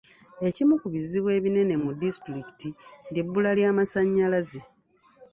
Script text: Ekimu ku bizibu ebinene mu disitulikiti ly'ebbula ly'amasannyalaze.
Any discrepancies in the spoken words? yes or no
no